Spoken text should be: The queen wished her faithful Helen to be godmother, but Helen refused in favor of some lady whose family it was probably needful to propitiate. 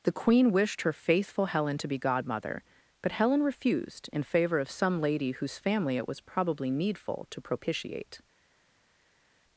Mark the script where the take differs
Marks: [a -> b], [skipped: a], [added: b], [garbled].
The queen wished her faithful Helen to be godmother, but Helen refused in favor of some lady whose family it was probably needful to propitiate.